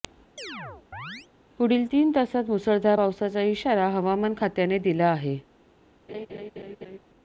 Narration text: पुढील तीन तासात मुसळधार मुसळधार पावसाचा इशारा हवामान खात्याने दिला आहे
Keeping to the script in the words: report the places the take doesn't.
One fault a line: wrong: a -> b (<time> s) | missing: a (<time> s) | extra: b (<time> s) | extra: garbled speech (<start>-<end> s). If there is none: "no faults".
missing: मुसळधार (3.0 s)